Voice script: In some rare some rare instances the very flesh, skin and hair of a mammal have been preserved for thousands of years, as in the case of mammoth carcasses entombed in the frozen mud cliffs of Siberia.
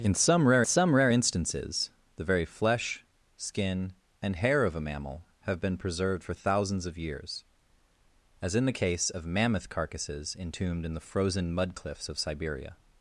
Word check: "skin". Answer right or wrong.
right